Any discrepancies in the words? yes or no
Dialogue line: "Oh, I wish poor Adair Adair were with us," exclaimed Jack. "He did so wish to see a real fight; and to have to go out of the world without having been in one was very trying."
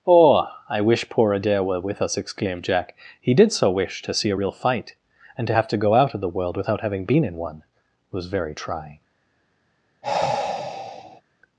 yes